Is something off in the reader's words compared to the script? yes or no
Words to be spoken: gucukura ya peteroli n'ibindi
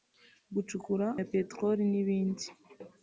no